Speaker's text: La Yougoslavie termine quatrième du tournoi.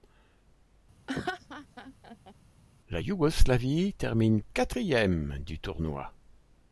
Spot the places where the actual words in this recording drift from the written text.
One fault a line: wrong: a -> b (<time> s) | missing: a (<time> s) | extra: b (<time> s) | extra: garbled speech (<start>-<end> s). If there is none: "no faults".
no faults